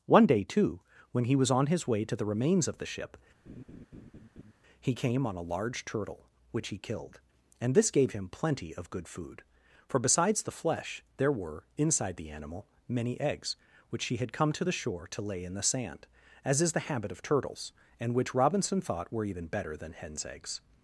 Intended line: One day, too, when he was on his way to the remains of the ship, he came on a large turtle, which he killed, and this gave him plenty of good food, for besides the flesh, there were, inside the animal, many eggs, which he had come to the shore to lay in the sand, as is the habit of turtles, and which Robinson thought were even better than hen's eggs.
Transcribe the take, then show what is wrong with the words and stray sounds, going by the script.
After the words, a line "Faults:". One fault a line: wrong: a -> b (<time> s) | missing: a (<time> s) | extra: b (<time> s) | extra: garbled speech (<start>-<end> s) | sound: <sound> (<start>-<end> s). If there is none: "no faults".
One day, too, when he was on his way to the remains of the ship, he came on a large turtle, which he killed, and this gave him plenty of good food, for besides the flesh, there were, inside the animal, many eggs, which he had come to the shore to lay in the sand, as is the habit of turtles, and which Robinson thought were even better than hen's eggs.
Faults:
sound: laugh (3.5-4.5 s)